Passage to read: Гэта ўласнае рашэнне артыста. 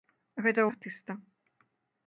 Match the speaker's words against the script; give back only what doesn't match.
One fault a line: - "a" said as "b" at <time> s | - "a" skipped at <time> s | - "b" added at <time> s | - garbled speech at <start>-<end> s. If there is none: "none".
- "ўласнае рашэнне" skipped at 0.6 s